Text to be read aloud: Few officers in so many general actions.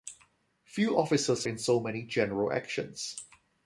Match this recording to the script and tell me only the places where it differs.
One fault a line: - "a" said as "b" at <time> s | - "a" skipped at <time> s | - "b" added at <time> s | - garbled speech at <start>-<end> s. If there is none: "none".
none